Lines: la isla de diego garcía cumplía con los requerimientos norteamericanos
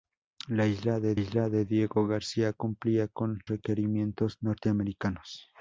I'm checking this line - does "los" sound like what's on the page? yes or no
no